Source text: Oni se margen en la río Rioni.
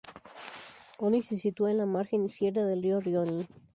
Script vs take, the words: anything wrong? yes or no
yes